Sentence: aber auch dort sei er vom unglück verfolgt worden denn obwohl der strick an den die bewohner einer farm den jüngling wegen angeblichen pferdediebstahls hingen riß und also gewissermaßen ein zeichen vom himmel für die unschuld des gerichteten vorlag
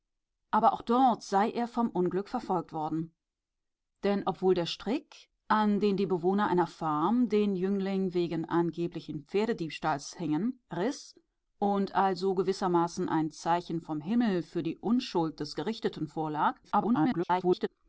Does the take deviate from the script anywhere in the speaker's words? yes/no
yes